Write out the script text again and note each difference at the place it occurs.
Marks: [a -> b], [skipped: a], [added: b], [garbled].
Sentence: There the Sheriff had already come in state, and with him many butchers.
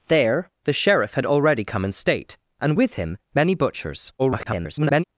There the Sheriff had already come in state, and with him many butchers. [garbled]